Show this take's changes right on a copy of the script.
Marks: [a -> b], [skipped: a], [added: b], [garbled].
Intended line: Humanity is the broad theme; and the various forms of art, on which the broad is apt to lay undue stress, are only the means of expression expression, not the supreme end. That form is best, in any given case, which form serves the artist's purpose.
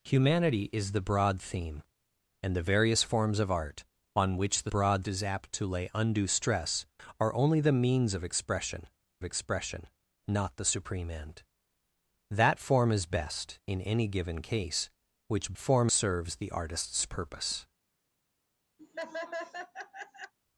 Humanity is the broad theme; and the various forms of art, on which the broad is apt to lay undue stress, are only the means of expression expression, not the supreme end. That form is best, in any given case, which form serves the artist's purpose.